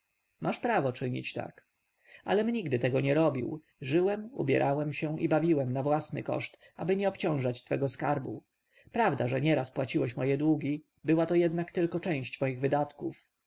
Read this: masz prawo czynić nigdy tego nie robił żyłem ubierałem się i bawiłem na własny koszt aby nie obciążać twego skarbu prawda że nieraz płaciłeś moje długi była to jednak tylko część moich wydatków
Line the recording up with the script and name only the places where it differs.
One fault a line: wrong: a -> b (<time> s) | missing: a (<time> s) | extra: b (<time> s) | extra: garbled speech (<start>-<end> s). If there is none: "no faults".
extra: tak alem (1.3 s)